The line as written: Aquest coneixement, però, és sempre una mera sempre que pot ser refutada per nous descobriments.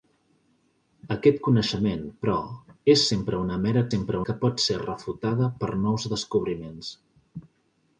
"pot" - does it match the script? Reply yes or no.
yes